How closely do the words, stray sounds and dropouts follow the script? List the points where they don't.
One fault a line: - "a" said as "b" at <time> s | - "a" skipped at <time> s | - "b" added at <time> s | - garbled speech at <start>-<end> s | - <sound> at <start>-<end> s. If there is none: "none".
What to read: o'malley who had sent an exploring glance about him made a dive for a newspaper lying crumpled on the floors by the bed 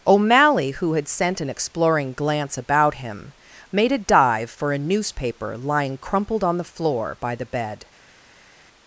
- "floors" said as "floor" at 6.6 s